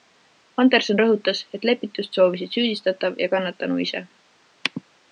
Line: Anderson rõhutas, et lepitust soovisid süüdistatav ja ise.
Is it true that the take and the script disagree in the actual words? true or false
true